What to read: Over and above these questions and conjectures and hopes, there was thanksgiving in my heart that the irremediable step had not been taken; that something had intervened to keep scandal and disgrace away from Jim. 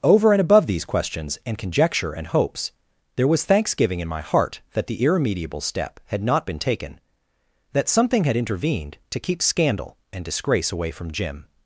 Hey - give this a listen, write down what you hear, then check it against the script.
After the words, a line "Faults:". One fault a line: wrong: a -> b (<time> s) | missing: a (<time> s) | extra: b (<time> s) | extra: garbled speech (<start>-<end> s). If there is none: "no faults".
Over and above these questions and conjecture and hopes, there was thanksgiving in my heart that the irremediable step had not been taken; that something had intervened to keep scandal and disgrace away from Jim.
Faults:
wrong: conjectures -> conjecture (1.6 s)